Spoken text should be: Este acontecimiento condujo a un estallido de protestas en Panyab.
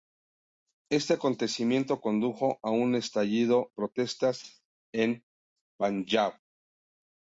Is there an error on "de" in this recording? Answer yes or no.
yes